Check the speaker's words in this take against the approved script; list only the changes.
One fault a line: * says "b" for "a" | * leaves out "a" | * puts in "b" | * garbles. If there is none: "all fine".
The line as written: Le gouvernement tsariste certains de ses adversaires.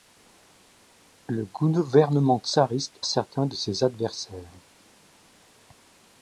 all fine